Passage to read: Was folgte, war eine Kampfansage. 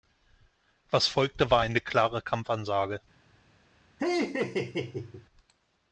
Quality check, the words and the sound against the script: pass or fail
fail